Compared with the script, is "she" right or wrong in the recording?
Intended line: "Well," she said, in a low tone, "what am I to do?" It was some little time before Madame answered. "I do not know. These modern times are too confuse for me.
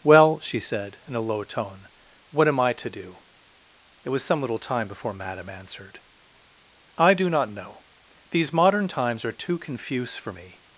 right